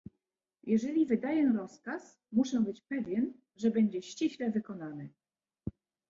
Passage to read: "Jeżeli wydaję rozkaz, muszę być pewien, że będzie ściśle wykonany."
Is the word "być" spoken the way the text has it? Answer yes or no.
yes